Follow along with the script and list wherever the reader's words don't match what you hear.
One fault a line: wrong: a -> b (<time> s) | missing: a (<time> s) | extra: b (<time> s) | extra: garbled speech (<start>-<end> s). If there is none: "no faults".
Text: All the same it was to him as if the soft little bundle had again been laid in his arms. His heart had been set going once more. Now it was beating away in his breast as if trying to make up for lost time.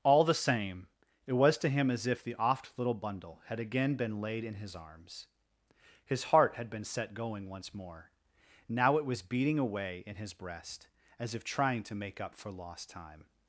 wrong: soft -> oft (2.4 s)